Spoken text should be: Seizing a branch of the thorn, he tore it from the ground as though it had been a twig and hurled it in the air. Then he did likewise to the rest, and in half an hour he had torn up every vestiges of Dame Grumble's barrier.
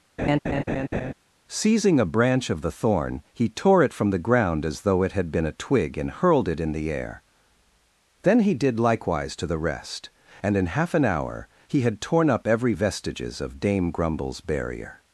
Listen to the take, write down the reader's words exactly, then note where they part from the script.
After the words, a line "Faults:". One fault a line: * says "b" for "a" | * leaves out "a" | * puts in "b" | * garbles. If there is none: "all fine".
Seizing a branch of the thorn, he tore it from the ground as though it had been a twig and hurled it in the air. Then he did likewise to the rest, and in half an hour he had torn up every vestiges of Dame Grumble's barrier.
Faults:
all fine